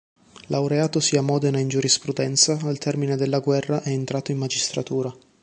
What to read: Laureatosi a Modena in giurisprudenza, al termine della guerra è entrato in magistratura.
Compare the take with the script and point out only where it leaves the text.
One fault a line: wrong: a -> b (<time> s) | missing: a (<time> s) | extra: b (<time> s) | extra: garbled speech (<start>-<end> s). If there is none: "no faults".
no faults